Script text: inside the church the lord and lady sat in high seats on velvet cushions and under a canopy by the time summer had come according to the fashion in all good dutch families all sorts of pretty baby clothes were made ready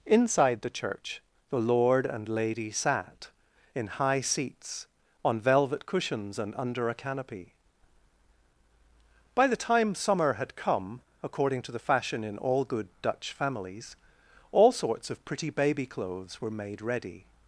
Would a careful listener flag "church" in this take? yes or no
no